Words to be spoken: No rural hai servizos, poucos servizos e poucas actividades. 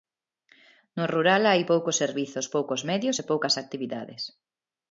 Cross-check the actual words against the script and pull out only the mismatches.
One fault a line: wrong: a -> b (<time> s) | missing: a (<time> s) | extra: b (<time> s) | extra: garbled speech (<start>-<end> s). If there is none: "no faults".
extra: poucos (1.7 s)
wrong: servizos -> medios (2.9 s)